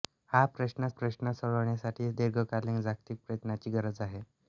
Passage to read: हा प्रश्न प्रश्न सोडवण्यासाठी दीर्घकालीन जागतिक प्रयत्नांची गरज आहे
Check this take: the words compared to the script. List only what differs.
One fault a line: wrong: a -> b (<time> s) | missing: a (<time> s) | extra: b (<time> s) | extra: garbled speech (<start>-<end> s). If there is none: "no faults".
no faults